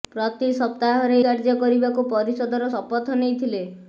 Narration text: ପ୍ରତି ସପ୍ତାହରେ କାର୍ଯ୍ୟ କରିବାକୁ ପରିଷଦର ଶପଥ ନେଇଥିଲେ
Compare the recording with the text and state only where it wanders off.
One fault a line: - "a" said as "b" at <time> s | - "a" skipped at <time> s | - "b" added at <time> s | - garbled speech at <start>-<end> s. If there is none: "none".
none